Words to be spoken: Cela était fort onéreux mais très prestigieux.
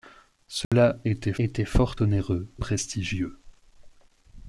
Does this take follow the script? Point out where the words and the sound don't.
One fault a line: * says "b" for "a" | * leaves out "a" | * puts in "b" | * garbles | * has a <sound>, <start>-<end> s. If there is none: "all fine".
* has a dropout, 0.6-0.7 s
* puts in "était"
* leaves out "mais très"